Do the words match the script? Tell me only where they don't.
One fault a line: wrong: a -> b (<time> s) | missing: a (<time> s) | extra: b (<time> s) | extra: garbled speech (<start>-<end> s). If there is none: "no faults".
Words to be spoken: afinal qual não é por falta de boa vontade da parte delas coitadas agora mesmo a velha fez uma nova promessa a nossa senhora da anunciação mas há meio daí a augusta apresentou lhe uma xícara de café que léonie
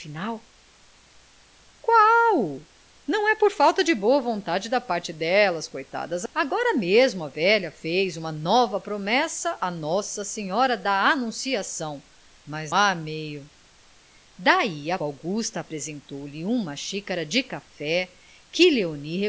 no faults